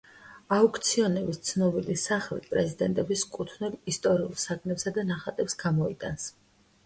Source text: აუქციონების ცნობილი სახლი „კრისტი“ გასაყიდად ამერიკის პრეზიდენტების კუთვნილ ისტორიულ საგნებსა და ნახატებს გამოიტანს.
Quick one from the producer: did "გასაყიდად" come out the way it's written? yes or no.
no